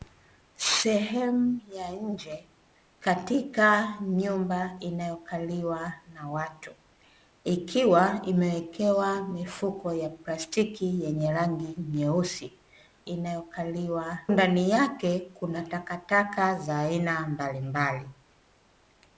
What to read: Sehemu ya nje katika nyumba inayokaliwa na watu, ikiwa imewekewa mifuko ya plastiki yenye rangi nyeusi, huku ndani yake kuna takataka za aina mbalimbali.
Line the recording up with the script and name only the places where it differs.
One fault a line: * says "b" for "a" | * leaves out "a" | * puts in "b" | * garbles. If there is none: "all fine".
* says "inayokaliwa" for "huku"